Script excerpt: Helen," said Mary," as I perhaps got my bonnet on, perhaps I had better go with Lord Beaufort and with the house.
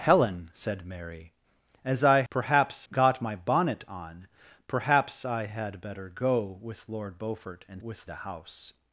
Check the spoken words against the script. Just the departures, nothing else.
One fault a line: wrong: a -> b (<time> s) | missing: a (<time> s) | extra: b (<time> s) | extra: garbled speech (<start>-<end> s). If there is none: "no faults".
no faults